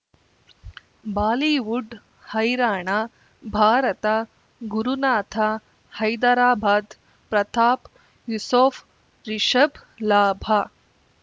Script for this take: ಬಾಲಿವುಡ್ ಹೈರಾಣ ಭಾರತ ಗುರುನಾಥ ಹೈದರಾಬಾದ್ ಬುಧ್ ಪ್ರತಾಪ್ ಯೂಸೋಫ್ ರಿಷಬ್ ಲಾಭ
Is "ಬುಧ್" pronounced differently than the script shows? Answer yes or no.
yes